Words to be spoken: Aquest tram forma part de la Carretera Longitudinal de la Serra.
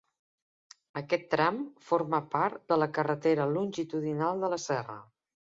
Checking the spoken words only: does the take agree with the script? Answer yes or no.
yes